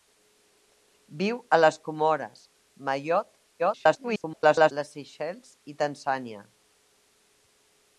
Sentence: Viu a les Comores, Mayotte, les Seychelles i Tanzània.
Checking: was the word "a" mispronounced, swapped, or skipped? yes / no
no